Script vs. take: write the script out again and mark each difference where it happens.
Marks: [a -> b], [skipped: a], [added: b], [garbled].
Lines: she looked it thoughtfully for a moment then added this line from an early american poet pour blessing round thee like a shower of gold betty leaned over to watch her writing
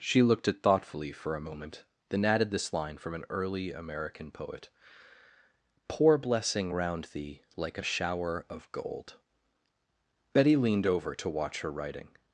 she looked it thoughtfully for a moment then added this line from an early american poet pour blessing round thee like a shower of gold betty leaned over to watch her writing